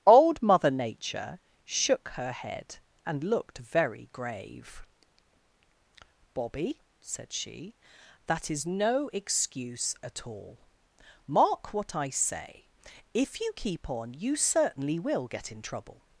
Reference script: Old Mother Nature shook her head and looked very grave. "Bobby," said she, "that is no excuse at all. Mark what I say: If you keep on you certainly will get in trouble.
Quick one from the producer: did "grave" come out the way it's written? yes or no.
yes